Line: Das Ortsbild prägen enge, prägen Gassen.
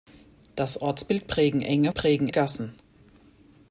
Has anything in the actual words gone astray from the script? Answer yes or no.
no